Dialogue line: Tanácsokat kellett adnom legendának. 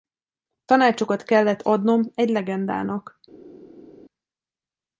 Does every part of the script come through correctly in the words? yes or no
no